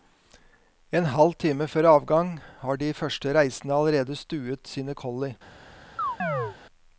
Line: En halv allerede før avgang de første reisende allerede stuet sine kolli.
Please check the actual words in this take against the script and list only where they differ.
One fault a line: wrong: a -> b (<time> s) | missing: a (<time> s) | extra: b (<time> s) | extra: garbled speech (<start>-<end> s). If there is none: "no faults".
wrong: allerede -> time (1.4 s)
extra: har (2.6 s)